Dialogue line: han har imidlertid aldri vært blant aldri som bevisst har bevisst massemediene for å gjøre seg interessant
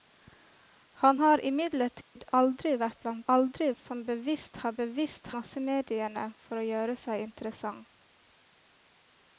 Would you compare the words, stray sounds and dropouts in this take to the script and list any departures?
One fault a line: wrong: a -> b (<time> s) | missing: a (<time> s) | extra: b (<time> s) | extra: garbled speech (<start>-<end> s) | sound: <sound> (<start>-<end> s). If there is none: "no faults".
sound: dropout (2.0-2.2 s)